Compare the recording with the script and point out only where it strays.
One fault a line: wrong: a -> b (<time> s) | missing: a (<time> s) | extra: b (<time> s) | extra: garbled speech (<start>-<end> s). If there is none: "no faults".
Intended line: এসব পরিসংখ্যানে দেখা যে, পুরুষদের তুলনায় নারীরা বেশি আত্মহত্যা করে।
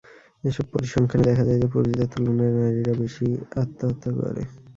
extra: যায় (1.4 s)